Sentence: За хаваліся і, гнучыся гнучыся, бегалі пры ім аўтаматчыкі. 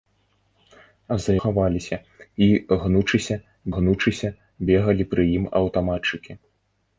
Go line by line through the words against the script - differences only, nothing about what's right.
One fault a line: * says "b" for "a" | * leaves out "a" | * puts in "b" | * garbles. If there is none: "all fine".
all fine